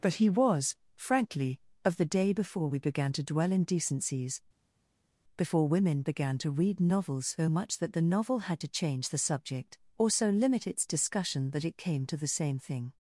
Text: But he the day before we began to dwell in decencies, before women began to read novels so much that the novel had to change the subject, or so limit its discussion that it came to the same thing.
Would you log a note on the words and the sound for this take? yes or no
yes